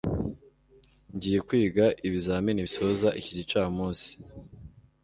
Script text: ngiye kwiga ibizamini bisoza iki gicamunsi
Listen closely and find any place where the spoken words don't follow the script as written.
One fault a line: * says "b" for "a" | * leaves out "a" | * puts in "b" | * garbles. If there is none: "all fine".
all fine